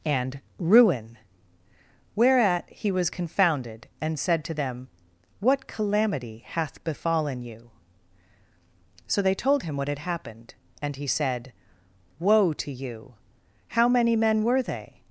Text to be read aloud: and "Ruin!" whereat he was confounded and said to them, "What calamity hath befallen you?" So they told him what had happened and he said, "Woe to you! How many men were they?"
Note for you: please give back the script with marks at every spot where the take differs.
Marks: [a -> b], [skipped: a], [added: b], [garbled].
and "Ruin!" whereat he was confounded and said to them, "What calamity hath befallen you?" So they told him what had happened and he said, "Woe to you! How many men were they?"